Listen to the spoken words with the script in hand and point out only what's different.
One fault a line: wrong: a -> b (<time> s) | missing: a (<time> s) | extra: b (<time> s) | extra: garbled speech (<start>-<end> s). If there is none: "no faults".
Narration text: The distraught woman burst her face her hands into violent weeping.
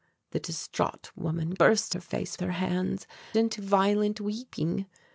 no faults